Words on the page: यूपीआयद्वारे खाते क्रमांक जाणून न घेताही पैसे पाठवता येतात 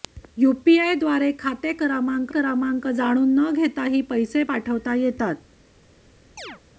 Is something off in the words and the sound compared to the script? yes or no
yes